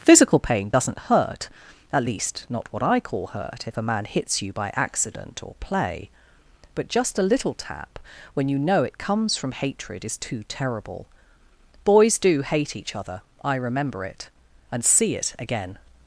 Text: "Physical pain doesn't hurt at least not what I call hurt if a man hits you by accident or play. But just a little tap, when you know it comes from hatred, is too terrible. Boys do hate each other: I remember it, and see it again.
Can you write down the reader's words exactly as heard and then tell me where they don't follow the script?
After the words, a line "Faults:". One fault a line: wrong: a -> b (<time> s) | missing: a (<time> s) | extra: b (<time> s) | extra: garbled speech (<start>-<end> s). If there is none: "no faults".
"Physical pain doesn't hurt at least not what I call hurt if a man hits you by accident or play. But just a little tap, when you know it comes from hatred, is too terrible. Boys do hate each other: I remember it, and see it again.
Faults:
no faults